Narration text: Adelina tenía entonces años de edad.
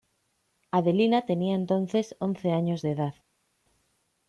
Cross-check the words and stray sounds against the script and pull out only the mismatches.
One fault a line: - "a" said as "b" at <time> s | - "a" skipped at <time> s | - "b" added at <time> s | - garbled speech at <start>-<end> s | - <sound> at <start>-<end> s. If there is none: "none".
- "once" added at 2.2 s